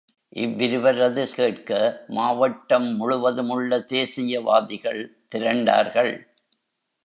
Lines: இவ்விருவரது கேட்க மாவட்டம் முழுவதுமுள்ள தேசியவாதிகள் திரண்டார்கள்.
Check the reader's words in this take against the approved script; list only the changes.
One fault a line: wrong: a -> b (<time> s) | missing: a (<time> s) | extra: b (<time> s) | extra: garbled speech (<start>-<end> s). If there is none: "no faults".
no faults